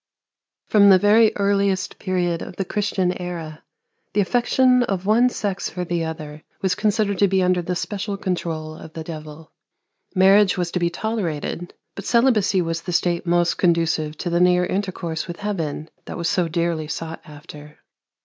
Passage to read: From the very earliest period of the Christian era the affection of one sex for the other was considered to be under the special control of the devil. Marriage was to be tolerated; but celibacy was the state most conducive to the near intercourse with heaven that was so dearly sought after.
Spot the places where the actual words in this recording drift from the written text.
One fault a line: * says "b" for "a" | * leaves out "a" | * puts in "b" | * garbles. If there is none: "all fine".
all fine